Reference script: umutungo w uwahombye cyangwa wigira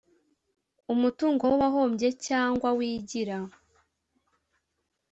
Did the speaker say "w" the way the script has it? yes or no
yes